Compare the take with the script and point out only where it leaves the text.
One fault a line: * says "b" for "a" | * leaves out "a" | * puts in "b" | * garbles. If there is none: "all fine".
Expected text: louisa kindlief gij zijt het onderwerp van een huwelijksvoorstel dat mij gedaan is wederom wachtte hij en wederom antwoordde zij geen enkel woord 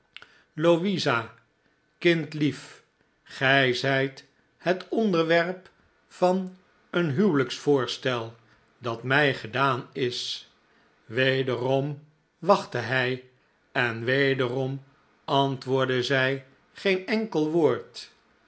all fine